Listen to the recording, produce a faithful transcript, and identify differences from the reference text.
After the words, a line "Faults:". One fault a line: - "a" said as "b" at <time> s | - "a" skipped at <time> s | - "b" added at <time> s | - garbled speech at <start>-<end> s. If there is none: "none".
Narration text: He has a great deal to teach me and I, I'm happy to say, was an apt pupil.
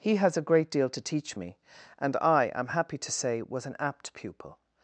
He has a great deal to teach me and I, I'm happy to say, was an apt pupil.
Faults:
none